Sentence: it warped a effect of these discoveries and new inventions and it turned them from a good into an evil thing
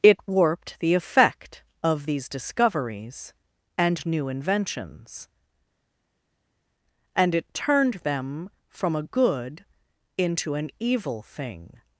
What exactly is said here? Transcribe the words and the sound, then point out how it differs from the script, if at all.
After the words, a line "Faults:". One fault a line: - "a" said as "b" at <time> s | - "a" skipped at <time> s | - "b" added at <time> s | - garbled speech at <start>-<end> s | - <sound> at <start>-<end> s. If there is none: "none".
it warped the effect of these discoveries and new inventions and it turned them from a good into an evil thing
Faults:
- "a" said as "the" at 0.8 s